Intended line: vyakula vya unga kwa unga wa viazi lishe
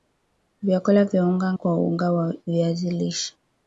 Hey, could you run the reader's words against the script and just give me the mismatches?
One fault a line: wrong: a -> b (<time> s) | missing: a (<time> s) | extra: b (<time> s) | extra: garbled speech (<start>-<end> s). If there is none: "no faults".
no faults